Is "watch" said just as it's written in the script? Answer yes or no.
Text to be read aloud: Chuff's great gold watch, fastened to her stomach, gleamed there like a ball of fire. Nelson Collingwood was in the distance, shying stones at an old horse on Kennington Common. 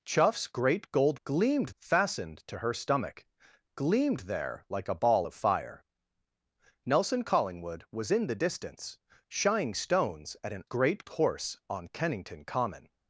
no